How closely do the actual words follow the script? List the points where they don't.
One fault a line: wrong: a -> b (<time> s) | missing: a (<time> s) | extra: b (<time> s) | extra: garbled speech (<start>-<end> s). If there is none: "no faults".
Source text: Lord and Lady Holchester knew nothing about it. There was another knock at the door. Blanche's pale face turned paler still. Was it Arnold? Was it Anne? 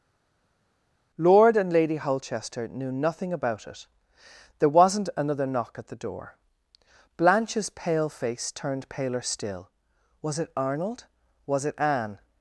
wrong: was -> wasn't (4.7 s)